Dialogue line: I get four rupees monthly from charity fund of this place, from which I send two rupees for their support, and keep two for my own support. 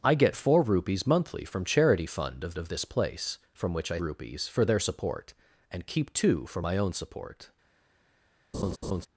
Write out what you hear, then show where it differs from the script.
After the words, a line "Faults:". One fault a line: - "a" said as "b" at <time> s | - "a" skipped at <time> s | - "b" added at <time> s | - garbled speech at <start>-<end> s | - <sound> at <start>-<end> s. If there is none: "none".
I get four rupees monthly from charity fund of of this place, from which I rupees for their support, and keep two for my own support.
Faults:
- "of" added at 2.6 s
- "send two" skipped at 4.0 s
- laugh at 8.5-9.1 s